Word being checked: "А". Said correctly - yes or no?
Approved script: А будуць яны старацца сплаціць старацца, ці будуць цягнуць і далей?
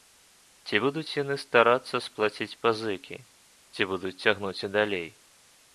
no